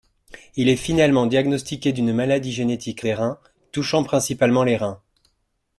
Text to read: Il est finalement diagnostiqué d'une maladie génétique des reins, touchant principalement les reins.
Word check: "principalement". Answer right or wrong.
right